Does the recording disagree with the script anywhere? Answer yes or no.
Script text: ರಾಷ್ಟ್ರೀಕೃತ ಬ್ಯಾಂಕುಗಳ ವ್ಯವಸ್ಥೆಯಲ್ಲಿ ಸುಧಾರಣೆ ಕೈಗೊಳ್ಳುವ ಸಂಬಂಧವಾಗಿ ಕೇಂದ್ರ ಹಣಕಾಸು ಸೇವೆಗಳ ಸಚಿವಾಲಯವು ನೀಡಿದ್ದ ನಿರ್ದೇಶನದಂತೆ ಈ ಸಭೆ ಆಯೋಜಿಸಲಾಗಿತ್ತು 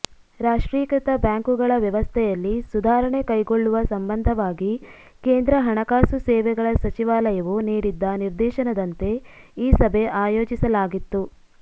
no